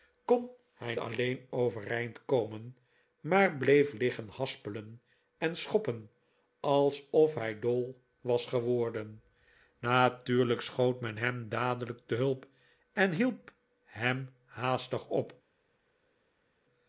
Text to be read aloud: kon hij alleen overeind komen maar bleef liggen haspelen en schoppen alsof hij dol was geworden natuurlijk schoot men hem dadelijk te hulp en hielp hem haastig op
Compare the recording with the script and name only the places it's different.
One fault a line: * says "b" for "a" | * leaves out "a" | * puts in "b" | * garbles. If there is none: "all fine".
all fine